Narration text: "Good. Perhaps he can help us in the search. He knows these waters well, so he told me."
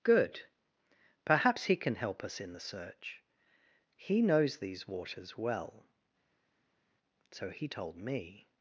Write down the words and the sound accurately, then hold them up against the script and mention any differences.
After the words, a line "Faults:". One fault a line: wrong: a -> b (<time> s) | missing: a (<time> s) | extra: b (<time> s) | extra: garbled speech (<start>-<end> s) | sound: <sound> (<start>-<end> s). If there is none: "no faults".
"Good. Perhaps he can help us in the search. He knows these waters well, so he told me."
Faults:
no faults